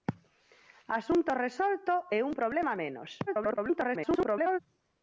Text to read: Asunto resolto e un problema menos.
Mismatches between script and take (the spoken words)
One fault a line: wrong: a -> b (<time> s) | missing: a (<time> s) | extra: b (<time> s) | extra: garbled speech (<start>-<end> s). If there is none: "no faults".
extra: garbled speech (3.3-4.6 s)